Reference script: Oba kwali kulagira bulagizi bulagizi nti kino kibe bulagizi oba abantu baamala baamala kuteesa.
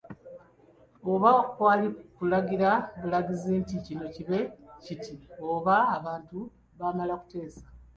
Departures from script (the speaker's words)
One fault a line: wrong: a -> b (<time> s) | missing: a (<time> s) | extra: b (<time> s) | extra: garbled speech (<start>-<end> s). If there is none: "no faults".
missing: bulagizi (3.5 s)
wrong: bulagizi -> kiti (4.8 s)
missing: baamala (7.1 s)